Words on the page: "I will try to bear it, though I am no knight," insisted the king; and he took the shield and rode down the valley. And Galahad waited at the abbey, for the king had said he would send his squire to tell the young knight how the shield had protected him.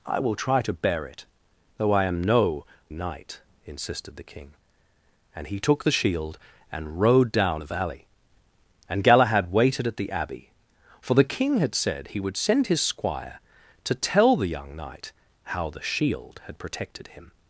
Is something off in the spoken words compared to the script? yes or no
no